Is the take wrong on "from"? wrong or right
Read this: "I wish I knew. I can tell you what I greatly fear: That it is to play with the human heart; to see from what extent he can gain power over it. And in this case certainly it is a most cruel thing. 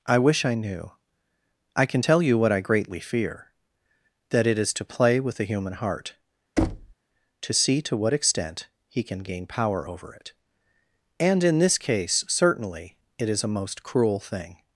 wrong